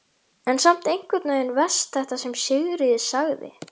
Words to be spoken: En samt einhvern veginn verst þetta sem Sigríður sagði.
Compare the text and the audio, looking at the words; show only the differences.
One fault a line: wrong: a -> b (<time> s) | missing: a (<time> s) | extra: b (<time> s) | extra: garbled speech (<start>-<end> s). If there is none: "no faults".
no faults